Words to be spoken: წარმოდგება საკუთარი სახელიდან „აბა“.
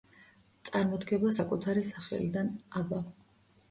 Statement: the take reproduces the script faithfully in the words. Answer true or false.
true